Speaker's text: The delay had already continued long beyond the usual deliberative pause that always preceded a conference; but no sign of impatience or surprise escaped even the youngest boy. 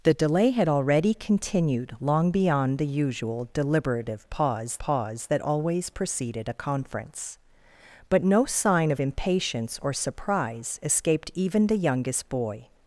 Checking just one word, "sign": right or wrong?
right